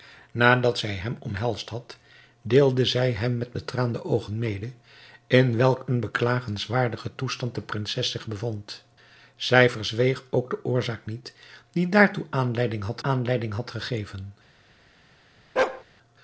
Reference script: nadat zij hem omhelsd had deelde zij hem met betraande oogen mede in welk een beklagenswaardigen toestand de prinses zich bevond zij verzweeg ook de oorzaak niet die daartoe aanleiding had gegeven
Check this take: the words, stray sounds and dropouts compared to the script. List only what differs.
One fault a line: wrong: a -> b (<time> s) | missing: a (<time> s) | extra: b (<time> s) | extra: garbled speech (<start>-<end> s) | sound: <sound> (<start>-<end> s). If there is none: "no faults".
extra: aanleiding had (13.0 s)
sound: bark (15.6-15.8 s)